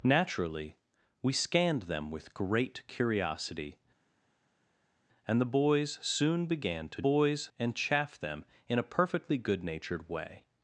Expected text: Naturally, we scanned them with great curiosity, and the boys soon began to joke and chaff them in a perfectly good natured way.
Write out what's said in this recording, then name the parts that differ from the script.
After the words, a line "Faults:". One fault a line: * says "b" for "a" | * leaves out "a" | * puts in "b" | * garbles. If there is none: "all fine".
Naturally, we scanned them with great curiosity, and the boys soon began to boys and chaff them in a perfectly good natured way.
Faults:
* says "boys" for "joke"